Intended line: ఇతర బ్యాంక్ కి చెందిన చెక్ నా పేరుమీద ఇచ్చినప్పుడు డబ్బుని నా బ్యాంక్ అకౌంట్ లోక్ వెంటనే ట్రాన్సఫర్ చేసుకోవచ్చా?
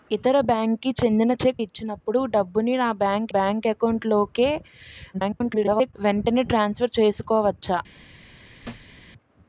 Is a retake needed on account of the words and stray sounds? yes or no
yes